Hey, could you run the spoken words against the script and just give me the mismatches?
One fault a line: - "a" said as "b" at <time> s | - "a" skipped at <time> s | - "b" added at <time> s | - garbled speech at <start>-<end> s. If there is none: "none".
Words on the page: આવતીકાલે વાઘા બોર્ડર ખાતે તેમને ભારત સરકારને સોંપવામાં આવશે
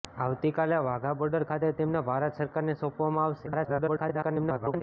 - garbled speech at 3.5-4.8 s